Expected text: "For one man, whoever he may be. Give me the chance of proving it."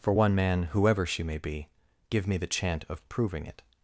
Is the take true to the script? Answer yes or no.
no